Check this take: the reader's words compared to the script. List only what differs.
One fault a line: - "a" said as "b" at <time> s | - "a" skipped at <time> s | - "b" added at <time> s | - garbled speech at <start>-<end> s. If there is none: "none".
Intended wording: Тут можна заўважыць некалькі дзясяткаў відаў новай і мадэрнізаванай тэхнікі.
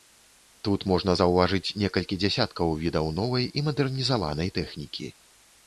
none